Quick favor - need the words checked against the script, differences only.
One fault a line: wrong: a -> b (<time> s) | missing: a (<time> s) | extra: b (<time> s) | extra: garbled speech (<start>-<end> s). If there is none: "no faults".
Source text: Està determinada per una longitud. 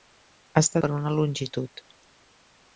missing: determinada (0.8 s)